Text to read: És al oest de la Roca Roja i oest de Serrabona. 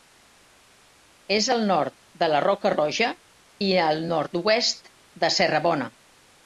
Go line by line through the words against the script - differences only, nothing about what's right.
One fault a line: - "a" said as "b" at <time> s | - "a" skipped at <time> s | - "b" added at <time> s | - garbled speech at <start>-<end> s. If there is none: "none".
- "oest" said as "nord" at 1.7 s
- "al nord" added at 3.9 s